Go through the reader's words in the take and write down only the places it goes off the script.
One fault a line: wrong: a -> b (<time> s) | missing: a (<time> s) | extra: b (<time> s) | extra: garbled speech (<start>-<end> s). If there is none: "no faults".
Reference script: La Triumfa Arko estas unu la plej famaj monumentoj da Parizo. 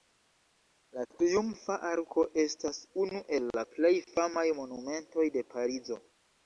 extra: el (3.4 s)
wrong: da -> de (5.4 s)